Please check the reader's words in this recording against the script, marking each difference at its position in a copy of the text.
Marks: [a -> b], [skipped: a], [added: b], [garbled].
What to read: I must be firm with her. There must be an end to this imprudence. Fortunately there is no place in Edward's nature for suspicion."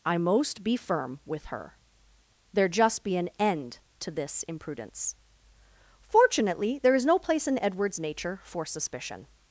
I [must -> most] be firm with her. There [must -> just] be an end to this imprudence. Fortunately there is no place in Edward's nature for suspicion."